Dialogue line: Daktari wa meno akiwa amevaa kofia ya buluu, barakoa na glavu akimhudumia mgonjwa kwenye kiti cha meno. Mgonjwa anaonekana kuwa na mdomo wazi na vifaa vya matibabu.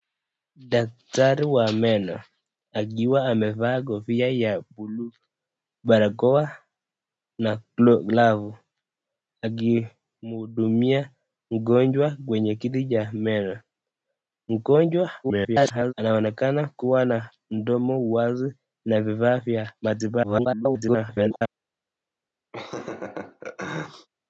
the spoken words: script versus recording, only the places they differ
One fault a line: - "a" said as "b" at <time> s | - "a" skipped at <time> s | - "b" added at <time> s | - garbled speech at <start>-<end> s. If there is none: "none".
- garbled speech at 15.2-15.9 s
- garbled speech at 20.2-21.4 s